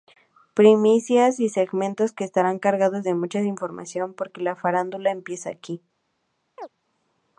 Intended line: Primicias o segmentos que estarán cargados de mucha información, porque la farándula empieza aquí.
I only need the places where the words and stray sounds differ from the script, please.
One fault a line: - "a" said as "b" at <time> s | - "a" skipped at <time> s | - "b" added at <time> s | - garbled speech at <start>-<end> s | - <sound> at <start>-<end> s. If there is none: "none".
- "o" said as "y" at 1.4 s
- chirp at 6.6-6.7 s